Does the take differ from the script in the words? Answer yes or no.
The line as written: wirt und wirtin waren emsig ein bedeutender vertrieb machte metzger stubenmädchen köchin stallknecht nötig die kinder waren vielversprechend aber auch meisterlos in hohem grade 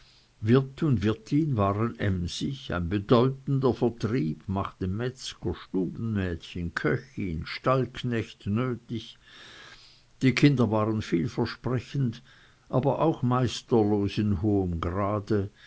no